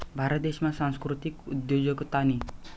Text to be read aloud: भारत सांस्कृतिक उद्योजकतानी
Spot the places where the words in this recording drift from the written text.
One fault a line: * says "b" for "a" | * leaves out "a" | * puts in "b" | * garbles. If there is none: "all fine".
* puts in "देशमा"